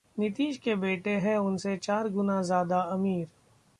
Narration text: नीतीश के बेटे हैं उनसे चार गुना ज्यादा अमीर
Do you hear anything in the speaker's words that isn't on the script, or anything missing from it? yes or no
no